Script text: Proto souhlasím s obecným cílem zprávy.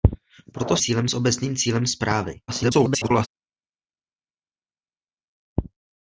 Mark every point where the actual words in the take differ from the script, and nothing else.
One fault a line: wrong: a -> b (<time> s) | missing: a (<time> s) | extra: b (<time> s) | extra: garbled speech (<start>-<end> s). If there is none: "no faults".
wrong: souhlasím -> cílem (0.8 s)
extra: garbled speech (2.5-3.3 s)